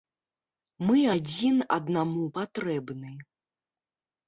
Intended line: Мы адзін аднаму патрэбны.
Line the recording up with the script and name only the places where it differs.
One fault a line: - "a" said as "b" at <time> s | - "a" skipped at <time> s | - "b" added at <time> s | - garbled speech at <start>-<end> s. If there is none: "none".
none